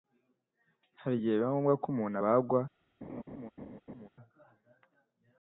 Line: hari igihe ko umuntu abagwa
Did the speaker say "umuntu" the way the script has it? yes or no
yes